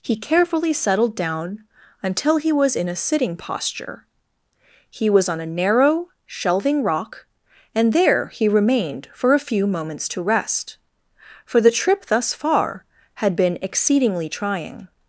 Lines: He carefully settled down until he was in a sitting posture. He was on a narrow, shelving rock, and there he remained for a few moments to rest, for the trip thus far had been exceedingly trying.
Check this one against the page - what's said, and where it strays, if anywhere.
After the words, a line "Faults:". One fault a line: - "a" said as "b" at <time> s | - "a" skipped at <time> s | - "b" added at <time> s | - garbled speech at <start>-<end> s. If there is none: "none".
He carefully settled down until he was in a sitting posture. He was on a narrow, shelving rock, and there he remained for a few moments to rest, for the trip thus far had been exceedingly trying.
Faults:
none